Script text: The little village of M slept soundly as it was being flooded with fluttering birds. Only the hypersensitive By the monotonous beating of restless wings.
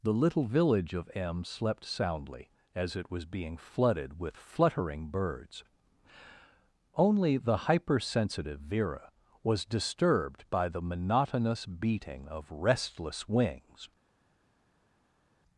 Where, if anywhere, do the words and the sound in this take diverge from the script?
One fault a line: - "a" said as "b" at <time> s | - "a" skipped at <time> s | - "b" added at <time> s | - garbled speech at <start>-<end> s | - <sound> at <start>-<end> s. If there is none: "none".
- "Vera was disturbed" added at 8.6 s